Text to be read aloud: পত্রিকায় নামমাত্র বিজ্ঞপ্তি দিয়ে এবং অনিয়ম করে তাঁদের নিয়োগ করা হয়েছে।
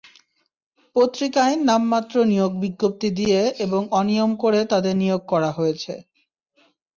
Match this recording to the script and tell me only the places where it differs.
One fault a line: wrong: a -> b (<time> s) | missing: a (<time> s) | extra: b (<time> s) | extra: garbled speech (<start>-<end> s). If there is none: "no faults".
extra: নিয়োগ (2.2 s)